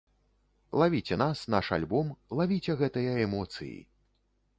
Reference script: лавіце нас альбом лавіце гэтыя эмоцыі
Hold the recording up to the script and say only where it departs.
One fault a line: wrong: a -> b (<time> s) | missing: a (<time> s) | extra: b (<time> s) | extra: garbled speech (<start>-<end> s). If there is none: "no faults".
extra: наш (1.5 s)